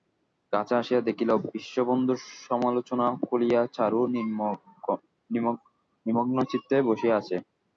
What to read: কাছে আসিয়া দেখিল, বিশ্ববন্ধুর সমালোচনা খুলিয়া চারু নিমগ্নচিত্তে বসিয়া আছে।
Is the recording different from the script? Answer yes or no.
no